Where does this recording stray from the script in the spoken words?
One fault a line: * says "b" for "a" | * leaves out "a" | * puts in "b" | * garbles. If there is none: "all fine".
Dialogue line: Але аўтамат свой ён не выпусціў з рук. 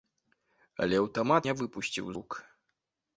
* leaves out "свой ён"
* leaves out "з"